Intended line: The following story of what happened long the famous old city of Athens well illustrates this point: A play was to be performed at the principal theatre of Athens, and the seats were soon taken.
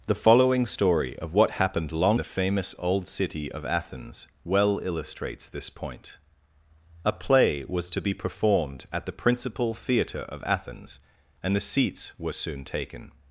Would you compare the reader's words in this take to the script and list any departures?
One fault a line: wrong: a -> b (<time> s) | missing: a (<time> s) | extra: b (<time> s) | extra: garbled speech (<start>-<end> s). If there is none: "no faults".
no faults